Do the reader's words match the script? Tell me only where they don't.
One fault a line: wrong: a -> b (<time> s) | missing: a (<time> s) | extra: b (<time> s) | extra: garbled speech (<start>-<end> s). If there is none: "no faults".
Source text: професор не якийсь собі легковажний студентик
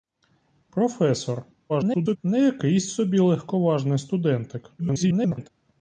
extra: garbled speech (1.7-2.2 s)
extra: garbled speech (4.8-5.5 s)